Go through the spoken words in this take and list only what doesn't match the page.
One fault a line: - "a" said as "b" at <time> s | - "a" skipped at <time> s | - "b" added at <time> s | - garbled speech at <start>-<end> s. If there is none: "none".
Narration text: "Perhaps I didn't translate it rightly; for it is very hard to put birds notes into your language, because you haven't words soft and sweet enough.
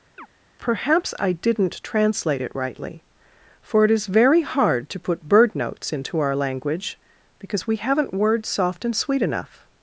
- "birds" said as "bird" at 5.3 s
- "your" said as "our" at 6.2 s
- "you" said as "we" at 7.7 s